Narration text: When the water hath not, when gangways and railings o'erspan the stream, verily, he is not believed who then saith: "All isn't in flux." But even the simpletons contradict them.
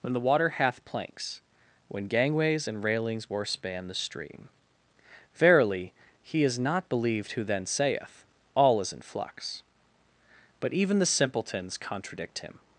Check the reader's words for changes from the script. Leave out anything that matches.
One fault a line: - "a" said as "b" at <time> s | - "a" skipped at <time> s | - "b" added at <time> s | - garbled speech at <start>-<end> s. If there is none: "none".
- "not" said as "planks" at 0.8 s
- "isn't" said as "is" at 8.8 s
- "them" said as "him" at 12.4 s